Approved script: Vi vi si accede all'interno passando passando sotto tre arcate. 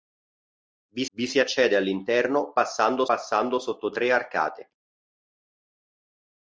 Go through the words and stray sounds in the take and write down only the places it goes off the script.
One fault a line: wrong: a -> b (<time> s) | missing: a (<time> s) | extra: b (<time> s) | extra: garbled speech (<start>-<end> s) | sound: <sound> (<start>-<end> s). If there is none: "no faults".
no faults